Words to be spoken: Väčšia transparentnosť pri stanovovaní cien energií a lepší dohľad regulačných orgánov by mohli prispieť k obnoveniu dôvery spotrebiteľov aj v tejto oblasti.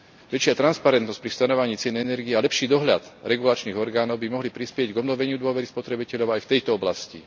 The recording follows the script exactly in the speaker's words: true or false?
true